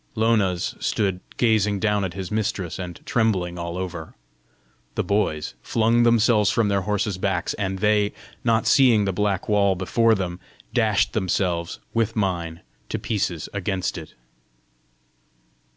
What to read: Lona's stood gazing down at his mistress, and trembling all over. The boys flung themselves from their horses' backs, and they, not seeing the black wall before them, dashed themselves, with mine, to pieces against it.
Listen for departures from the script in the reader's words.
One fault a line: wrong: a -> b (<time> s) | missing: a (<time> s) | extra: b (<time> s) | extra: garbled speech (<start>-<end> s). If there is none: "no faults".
no faults